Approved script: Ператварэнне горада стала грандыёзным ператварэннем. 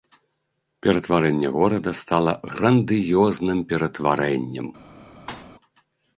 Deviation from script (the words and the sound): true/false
true